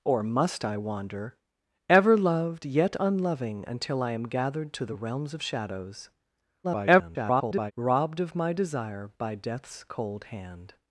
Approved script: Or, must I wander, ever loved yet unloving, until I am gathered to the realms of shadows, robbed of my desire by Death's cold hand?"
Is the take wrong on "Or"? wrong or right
right